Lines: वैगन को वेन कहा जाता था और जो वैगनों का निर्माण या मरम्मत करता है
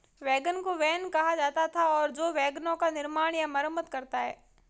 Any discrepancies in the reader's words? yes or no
no